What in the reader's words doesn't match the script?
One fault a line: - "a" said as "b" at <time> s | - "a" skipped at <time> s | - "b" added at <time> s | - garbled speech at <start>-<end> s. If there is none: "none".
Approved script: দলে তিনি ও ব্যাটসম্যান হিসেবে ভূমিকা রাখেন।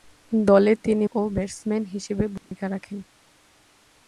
none